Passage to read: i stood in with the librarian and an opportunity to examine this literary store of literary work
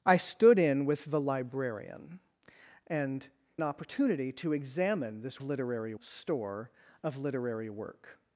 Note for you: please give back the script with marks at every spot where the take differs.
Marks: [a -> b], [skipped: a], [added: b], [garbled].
i stood in with the librarian and an opportunity to examine this literary store of literary work